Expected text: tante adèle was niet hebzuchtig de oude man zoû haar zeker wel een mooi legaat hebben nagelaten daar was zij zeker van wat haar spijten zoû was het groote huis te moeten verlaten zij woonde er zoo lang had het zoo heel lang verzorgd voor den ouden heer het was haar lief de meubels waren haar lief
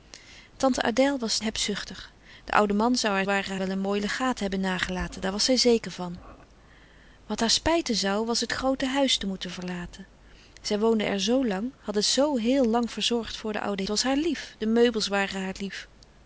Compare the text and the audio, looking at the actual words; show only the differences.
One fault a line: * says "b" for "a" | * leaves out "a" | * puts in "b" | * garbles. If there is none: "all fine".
* leaves out "niet"
* says "waren" for "zeker"
* leaves out "heer het"